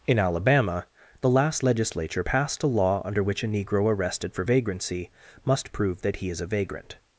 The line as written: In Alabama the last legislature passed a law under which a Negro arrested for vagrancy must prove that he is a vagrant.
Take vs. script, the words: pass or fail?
pass